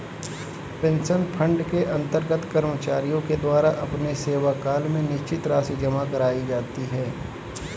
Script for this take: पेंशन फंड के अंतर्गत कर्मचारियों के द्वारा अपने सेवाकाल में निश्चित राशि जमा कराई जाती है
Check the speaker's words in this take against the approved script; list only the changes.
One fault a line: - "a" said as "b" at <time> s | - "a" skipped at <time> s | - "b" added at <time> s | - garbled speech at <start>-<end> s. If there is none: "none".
none